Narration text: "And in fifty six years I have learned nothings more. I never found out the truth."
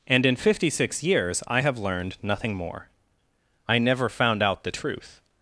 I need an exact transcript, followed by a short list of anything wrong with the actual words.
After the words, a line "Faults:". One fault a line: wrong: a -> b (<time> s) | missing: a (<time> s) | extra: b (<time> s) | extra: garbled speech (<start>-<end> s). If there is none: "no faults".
"And in fifty six years I have learned nothing more. I never found out the truth."
Faults:
wrong: nothings -> nothing (2.2 s)